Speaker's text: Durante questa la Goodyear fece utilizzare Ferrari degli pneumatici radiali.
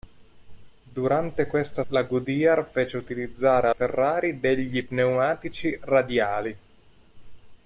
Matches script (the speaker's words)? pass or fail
pass